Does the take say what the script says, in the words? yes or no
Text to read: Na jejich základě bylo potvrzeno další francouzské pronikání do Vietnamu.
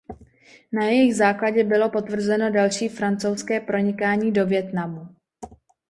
yes